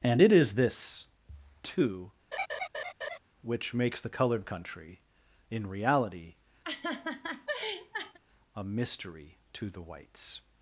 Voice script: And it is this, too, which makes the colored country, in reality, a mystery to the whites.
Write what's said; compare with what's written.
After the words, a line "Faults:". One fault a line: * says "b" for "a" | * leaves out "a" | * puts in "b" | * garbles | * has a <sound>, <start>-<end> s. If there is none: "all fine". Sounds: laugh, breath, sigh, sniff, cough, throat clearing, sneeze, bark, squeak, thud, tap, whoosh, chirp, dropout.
And it is this, too, which makes the colored country, in reality, a mystery to the whites.
Faults:
* has a laugh, 2.3-3.2 s
* has a laugh, 6.6-8.2 s